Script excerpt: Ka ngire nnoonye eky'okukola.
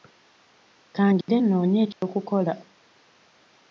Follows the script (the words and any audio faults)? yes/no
no